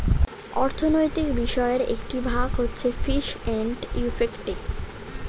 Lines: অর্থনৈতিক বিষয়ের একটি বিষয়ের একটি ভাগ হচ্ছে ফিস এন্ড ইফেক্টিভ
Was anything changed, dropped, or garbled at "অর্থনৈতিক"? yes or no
no